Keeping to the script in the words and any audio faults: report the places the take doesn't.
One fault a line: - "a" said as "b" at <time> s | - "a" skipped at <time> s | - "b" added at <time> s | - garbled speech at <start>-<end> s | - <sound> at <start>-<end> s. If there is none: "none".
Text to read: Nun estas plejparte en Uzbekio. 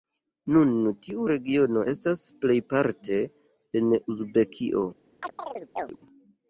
- "tiu regiono" added at 1.1 s
- chirp at 5.2-6.0 s